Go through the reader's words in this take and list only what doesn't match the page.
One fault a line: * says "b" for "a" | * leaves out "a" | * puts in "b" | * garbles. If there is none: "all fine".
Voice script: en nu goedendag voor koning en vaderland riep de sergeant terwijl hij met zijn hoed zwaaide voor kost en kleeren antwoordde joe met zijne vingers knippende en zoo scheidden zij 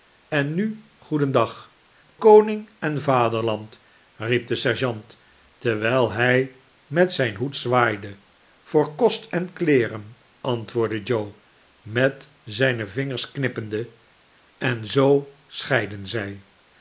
* leaves out "voor"